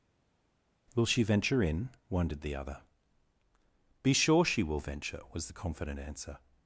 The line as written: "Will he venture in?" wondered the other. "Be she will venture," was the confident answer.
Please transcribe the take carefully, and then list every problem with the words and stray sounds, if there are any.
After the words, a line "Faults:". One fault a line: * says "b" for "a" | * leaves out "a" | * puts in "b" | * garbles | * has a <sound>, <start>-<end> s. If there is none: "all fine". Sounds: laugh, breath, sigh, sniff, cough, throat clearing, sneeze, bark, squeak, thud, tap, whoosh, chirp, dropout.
"Will she venture in?" wondered the other. "Be sure she will venture," was the confident answer.
Faults:
* says "she" for "he"
* puts in "sure"